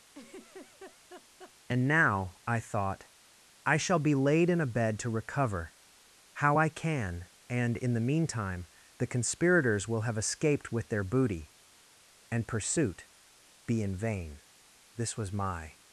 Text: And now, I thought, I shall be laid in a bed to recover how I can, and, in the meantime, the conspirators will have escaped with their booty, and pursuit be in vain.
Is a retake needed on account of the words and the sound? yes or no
yes